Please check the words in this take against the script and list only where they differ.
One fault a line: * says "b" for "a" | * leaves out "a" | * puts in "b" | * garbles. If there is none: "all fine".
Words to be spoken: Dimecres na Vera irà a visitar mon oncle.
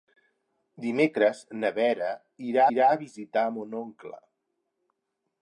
* puts in "irà"